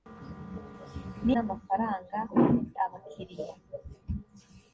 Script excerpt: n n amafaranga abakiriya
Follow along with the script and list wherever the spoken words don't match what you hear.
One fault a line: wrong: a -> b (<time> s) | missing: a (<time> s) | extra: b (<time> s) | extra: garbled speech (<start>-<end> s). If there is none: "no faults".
no faults